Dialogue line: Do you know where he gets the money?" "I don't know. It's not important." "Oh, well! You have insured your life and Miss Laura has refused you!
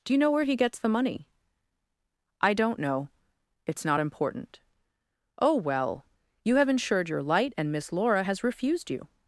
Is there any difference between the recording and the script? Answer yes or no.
yes